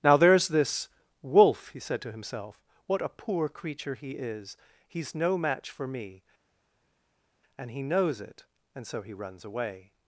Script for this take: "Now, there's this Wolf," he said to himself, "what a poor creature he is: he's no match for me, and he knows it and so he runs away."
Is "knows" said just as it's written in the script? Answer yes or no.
yes